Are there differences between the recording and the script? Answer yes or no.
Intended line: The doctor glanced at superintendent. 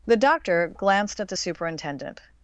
yes